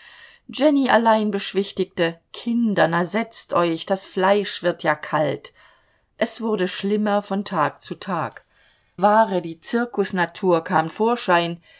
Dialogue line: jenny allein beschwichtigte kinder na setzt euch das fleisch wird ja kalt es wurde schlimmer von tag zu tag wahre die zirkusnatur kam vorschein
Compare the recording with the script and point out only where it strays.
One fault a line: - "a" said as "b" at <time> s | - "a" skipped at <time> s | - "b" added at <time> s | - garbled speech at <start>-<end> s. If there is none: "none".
none